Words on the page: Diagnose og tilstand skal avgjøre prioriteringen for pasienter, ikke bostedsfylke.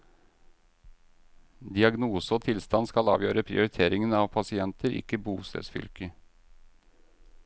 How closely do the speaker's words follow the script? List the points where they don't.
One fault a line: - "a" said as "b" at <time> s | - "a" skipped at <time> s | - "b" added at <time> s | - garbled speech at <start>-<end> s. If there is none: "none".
- "for" said as "av" at 4.1 s